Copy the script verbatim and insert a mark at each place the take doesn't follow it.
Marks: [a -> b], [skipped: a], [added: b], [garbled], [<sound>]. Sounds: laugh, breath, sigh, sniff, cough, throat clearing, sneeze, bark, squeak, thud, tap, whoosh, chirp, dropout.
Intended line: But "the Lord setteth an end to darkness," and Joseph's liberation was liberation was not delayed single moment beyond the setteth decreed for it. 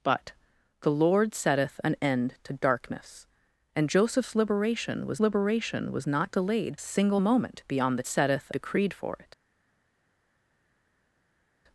But "the Lord setteth an end to darkness," and Joseph's liberation was liberation was not delayed single moment beyond the setteth decreed for it.